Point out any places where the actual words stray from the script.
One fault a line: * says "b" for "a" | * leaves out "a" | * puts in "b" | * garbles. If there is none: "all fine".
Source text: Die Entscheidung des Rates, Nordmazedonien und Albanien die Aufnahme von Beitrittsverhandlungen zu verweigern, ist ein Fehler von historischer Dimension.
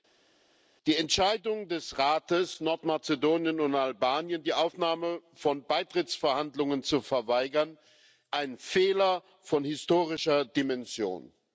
* leaves out "ist"